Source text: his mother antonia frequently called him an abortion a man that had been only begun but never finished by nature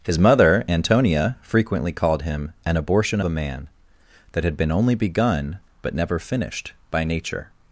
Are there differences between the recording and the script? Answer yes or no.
no